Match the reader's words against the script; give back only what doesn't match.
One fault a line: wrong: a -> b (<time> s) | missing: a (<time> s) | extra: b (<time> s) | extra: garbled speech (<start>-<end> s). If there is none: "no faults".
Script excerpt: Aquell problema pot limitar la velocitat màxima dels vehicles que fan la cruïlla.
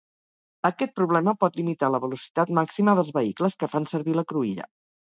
wrong: Aquell -> Aquest (0.7 s)
extra: servir (4.0 s)